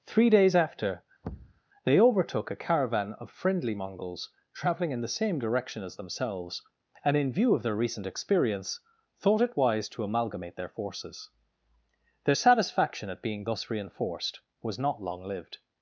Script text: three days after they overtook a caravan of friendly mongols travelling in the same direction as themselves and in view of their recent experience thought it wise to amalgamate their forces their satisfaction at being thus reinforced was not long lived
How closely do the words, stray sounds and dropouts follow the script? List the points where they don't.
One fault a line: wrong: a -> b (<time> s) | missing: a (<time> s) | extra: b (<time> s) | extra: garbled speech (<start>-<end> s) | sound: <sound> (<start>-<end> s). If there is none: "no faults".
sound: thud (1.2-1.6 s)